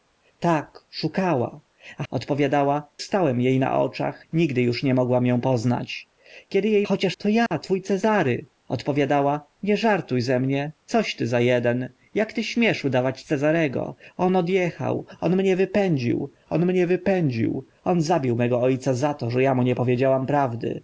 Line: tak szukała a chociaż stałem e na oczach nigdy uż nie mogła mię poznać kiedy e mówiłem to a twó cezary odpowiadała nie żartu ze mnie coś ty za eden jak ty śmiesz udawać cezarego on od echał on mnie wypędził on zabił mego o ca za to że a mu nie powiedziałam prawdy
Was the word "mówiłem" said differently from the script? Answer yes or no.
yes